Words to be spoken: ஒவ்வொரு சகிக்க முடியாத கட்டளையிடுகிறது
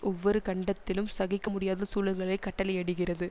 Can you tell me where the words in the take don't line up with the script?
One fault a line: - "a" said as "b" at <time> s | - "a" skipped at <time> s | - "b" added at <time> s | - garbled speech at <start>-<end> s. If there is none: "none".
- "கண்டத்திலும்" added at 0.5 s
- "சூழல்களை" added at 1.9 s